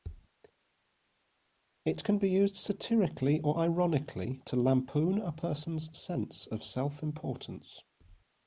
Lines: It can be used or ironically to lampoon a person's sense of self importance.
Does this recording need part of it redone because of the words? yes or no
yes